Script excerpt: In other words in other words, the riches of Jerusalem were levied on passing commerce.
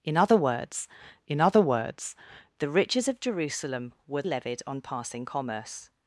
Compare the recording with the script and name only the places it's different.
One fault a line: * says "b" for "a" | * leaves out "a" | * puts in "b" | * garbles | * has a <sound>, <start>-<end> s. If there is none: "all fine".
all fine